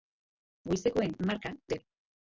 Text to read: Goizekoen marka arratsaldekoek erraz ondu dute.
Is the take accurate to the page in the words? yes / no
no